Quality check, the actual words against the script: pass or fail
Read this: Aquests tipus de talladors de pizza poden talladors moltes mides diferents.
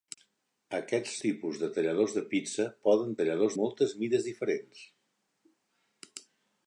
pass